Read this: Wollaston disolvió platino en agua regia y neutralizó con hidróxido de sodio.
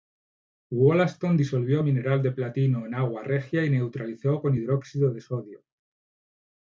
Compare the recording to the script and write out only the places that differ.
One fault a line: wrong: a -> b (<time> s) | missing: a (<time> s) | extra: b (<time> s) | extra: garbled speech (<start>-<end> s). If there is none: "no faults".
extra: mineral de (1.8 s)